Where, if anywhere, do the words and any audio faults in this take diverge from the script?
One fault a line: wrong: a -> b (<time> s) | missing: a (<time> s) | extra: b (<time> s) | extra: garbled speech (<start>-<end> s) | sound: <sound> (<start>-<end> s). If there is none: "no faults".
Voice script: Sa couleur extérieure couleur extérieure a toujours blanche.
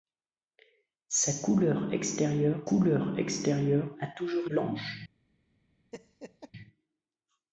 sound: laugh (5.9-6.5 s)